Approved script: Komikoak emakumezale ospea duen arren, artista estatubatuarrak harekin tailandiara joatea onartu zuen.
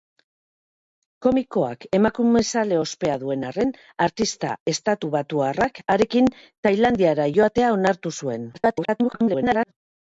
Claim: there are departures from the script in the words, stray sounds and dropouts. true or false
true